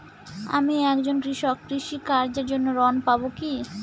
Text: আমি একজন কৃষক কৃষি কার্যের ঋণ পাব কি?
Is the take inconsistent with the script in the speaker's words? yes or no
yes